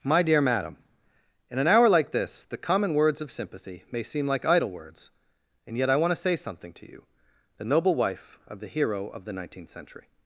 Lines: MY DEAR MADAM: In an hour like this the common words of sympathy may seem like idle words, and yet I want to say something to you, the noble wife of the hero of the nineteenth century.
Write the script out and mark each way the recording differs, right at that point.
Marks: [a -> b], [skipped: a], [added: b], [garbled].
MY DEAR MADAM: In an hour like this the common words of sympathy may seem like idle words, and yet I want to say something to you, the noble wife of the hero of the nineteenth century.